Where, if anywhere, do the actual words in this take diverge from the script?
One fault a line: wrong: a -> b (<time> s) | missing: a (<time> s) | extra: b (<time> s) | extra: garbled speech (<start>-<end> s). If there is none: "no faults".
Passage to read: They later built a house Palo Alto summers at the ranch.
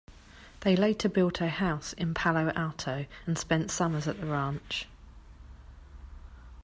extra: in (1.9 s)
extra: and spent (3.3 s)